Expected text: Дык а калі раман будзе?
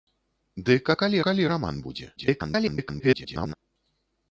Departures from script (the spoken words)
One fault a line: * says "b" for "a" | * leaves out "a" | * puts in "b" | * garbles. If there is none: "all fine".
* puts in "калі"
* garbles